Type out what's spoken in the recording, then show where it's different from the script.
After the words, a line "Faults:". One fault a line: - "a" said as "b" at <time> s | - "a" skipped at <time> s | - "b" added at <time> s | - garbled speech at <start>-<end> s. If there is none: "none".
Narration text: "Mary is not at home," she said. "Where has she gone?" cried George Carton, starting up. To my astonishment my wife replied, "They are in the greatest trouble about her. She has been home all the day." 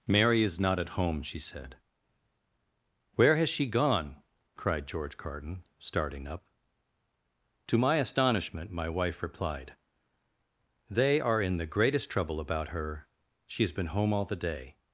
"Mary is not at home," she said. "Where has she gone?" cried George Carton, starting up. To my astonishment my wife replied, "They are in the greatest trouble about her. She has been home all the day."
Faults:
none